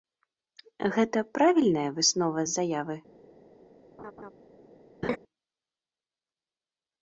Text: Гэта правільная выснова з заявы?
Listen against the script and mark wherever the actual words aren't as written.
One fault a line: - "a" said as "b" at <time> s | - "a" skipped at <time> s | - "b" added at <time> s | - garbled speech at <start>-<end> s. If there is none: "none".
none